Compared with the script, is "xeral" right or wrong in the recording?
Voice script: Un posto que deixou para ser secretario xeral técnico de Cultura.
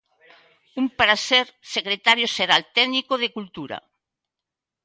right